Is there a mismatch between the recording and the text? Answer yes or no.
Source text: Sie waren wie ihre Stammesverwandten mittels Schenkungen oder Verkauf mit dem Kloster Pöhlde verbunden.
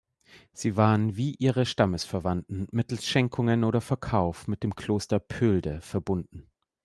no